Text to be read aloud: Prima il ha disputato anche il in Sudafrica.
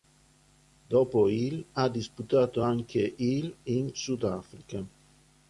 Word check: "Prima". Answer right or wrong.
wrong